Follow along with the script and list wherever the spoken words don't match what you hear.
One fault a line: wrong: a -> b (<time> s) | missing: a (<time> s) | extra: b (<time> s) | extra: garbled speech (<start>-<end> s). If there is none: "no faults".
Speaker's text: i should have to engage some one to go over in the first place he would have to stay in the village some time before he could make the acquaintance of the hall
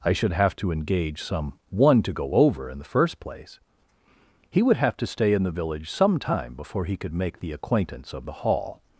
no faults